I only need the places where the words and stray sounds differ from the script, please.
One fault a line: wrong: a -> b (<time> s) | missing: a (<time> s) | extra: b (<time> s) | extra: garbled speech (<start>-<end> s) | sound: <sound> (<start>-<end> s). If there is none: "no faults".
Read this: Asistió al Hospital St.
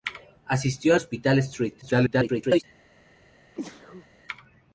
missing: al (0.9 s)
extra: garbled speech (1.8-2.6 s)
sound: sneeze (3.5-4.1 s)